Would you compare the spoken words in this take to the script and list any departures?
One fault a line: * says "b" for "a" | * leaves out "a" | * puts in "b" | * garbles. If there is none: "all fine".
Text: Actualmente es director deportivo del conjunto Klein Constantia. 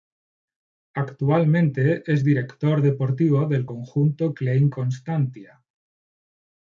all fine